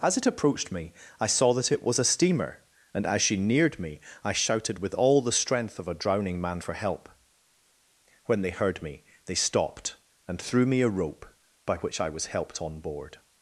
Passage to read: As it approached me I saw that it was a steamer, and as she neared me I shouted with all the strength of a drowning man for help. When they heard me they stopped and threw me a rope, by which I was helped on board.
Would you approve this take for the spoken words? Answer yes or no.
yes